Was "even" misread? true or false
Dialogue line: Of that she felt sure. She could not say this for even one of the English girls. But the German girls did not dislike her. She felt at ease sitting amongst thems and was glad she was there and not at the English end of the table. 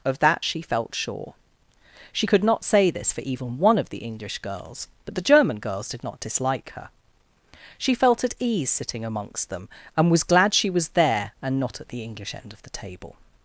false